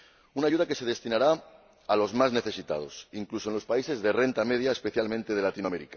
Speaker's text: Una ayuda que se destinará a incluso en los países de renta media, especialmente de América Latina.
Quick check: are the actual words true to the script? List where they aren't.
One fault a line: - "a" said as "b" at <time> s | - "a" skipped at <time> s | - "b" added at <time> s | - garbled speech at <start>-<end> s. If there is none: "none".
- "los más necesitados" added at 2.0 s